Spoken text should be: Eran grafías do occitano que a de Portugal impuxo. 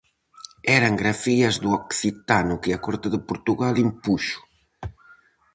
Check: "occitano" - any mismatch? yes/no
no